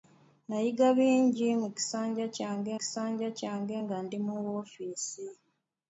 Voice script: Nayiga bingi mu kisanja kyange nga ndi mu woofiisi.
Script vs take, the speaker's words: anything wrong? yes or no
yes